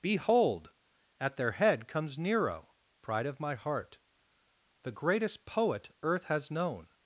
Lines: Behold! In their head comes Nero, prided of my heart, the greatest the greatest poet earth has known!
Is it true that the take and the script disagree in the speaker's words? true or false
true